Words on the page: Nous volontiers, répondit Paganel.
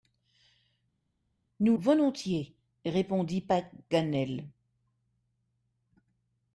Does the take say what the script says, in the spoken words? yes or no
yes